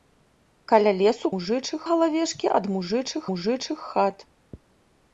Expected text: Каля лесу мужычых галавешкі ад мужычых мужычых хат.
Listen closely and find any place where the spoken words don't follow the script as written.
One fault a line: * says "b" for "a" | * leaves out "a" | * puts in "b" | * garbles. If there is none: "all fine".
all fine